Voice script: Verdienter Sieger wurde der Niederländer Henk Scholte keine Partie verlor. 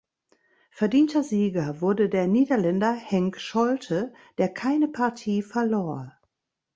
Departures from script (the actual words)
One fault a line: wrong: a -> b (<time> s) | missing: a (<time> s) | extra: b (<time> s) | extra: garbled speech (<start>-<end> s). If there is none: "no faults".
extra: der (4.4 s)